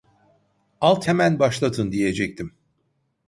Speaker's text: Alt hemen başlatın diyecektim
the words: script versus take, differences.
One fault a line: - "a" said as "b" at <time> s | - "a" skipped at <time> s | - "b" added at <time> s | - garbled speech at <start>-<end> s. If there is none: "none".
none